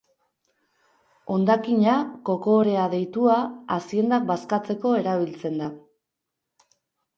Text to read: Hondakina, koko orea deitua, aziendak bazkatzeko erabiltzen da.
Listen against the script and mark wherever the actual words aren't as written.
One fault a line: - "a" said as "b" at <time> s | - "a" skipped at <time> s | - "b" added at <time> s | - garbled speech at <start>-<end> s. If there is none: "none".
none